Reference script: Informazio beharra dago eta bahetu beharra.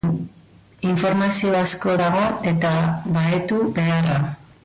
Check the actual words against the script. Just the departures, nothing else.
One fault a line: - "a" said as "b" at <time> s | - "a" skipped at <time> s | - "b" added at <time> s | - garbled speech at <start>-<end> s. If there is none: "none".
- "beharra" said as "asko" at 1.6 s